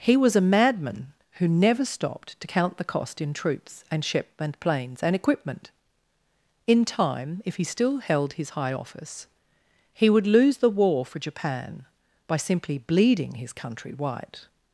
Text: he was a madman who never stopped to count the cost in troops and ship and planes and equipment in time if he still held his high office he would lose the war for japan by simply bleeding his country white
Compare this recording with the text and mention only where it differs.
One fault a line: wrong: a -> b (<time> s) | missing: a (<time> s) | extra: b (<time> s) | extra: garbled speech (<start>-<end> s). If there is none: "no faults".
no faults